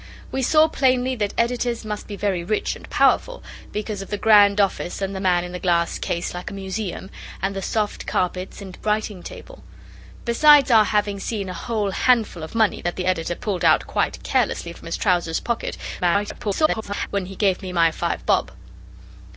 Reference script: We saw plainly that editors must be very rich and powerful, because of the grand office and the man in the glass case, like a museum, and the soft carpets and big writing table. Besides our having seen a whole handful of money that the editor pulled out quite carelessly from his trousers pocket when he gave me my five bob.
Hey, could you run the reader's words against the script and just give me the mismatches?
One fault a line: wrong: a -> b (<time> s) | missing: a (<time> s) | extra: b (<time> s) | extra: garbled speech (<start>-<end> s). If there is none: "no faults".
missing: big (8.8 s)
extra: garbled speech (16.0-17.1 s)